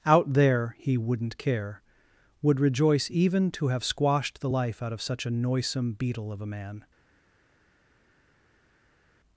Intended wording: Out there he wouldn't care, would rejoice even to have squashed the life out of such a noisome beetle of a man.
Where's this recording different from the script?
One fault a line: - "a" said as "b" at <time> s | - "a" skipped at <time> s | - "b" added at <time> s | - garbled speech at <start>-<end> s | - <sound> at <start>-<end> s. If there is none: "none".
none